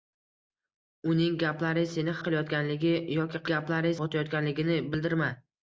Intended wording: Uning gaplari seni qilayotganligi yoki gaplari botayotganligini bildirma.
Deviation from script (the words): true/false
false